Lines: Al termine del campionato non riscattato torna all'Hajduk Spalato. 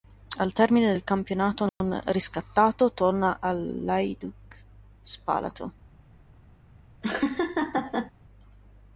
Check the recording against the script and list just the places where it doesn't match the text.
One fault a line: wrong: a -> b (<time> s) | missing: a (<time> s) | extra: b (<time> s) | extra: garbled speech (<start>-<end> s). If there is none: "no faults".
no faults